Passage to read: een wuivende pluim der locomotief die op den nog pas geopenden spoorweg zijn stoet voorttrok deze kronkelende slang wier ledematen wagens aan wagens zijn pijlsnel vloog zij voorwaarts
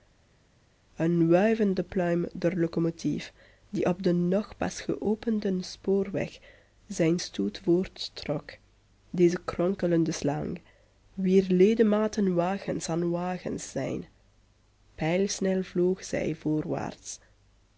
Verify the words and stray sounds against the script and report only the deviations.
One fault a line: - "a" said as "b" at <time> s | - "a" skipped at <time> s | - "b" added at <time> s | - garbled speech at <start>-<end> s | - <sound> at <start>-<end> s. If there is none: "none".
none